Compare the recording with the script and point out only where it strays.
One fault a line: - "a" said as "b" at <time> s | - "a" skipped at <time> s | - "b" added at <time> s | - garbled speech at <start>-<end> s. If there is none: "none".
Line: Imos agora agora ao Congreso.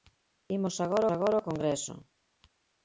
none